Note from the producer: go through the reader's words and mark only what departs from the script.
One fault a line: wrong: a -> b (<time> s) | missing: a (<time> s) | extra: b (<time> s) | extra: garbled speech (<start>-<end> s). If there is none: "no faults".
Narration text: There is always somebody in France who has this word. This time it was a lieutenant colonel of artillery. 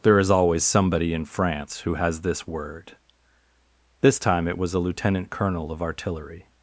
no faults